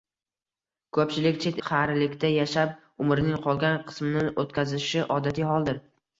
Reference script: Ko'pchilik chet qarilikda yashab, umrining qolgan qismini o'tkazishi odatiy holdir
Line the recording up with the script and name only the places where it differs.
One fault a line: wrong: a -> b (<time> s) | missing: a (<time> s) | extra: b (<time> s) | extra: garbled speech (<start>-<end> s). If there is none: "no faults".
no faults